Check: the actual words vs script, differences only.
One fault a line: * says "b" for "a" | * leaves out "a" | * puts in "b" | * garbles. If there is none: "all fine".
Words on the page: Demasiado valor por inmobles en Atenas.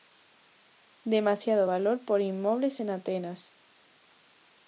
all fine